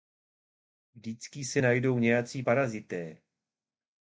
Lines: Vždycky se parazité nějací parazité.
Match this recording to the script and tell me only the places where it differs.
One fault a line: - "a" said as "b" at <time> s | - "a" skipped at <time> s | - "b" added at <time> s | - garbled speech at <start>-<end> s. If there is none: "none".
- "parazité" said as "najdou" at 1.6 s